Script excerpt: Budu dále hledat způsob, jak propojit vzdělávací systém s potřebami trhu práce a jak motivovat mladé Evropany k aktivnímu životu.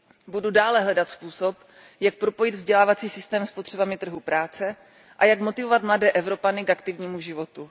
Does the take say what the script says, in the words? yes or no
yes